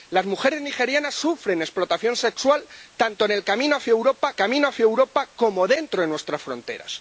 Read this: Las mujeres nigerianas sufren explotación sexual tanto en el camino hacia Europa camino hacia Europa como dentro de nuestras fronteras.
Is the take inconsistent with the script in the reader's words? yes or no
no